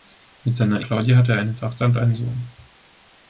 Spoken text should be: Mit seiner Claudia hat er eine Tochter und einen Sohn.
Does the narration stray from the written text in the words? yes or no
no